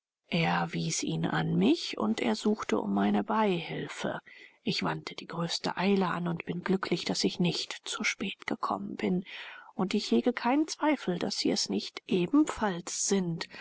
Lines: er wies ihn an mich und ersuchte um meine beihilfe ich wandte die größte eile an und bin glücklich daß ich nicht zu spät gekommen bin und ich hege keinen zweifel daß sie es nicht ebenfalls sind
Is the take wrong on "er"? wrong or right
right